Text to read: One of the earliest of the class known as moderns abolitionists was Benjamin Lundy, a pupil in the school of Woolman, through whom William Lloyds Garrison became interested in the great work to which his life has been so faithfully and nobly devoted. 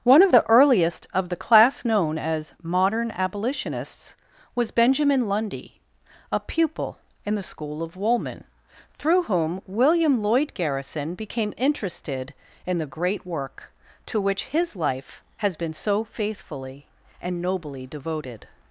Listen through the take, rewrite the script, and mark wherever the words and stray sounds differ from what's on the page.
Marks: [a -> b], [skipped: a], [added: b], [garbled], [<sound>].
One of the earliest of the class known as [moderns -> modern] abolitionists was Benjamin Lundy, a pupil in the school of Woolman, through whom William [Lloyds -> Lloyd] Garrison became interested in the great work to which his life has been so faithfully and nobly devoted.